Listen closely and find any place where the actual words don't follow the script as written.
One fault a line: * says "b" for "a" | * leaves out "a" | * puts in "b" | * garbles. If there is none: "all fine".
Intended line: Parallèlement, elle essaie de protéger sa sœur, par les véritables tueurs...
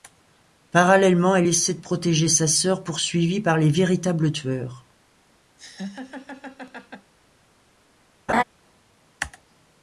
* puts in "poursuivie"